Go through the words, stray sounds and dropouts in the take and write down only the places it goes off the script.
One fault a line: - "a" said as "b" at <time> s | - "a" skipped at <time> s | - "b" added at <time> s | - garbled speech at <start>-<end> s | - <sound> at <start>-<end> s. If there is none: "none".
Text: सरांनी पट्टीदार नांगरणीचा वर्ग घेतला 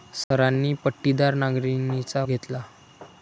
- dropout at 0.2-0.3 s
- "वर्ग" skipped at 2.2 s